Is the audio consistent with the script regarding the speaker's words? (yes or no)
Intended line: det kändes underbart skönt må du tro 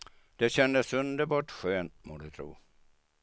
yes